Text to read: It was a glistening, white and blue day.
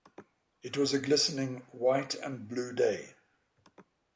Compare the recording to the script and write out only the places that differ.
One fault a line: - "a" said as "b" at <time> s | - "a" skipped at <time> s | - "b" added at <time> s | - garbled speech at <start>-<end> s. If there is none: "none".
none